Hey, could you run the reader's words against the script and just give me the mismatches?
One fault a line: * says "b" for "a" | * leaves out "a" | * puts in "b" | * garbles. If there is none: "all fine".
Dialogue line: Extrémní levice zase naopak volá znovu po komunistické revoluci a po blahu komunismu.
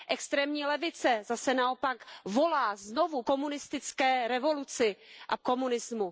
* leaves out "po"
* leaves out "po blahu"